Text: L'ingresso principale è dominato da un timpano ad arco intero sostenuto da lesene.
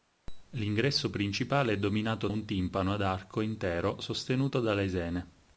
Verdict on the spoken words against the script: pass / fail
fail